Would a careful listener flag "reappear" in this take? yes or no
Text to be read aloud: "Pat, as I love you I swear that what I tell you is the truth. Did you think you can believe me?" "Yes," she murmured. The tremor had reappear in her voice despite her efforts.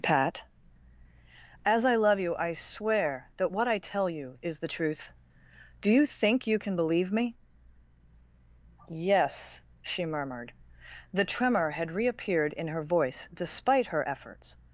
yes